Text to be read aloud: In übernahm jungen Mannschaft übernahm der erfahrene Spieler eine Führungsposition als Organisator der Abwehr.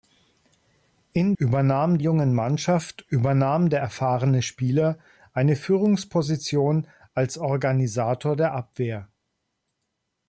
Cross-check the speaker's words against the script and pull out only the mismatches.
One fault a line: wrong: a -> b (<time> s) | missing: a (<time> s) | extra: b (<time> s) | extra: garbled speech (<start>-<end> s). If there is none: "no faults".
no faults